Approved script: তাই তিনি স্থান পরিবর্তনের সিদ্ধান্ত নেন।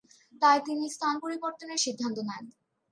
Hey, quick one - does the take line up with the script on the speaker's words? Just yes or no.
yes